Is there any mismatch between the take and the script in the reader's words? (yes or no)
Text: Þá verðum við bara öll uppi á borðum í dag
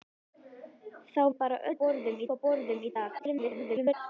yes